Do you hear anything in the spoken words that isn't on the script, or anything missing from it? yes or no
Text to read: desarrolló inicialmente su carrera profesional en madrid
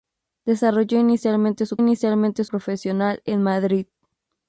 yes